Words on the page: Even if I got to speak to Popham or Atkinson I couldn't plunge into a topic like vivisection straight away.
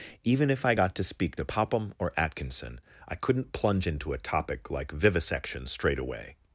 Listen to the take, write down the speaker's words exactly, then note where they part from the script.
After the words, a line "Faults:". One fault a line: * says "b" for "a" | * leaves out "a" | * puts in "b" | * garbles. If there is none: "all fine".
Even if I got to speak to Popham or Atkinson I couldn't plunge into a topic like vivisection straight away.
Faults:
all fine